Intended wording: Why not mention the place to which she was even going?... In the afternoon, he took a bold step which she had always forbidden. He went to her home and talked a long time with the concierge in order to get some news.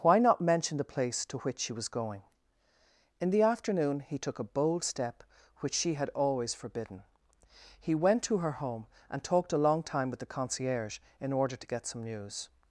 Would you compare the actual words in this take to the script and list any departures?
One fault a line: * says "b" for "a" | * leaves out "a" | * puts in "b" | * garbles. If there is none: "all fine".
* leaves out "even"